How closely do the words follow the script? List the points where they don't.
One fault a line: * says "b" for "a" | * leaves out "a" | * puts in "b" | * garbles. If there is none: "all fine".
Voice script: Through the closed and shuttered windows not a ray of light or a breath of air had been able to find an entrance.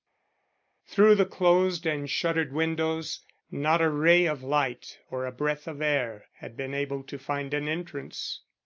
all fine